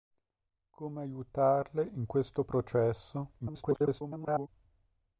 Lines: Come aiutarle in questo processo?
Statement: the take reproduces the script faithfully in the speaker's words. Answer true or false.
false